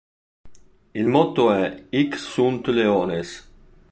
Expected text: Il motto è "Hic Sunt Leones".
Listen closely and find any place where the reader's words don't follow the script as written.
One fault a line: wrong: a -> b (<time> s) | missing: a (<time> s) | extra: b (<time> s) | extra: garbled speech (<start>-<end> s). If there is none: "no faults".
no faults